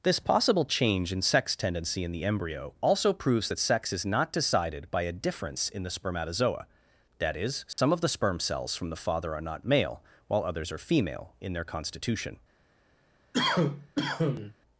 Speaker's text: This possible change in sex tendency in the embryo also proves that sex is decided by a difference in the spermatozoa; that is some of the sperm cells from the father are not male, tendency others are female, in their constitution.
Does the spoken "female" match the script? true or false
true